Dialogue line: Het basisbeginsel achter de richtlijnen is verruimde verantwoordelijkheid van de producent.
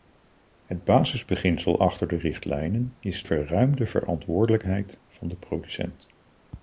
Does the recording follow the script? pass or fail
pass